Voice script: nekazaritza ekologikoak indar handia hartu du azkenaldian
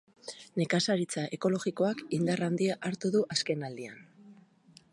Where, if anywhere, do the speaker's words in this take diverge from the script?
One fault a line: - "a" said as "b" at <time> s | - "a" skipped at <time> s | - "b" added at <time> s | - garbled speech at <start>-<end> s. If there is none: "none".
none